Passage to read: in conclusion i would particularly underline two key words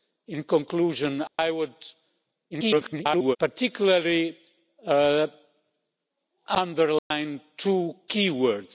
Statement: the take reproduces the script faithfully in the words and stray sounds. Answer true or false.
false